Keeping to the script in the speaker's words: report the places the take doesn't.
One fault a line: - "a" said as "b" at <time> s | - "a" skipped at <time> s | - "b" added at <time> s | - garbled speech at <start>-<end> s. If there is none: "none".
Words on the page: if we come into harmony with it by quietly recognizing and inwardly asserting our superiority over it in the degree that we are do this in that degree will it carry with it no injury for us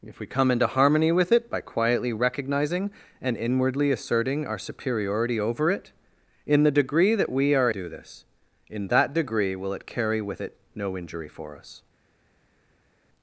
none